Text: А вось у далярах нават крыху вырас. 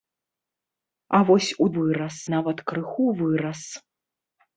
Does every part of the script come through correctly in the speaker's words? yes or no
no